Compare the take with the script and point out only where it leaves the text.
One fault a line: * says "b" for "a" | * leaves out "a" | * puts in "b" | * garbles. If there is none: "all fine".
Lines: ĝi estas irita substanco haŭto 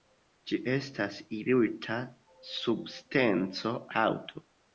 all fine